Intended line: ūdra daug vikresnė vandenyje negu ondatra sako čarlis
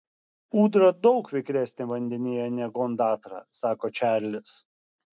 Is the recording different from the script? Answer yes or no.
no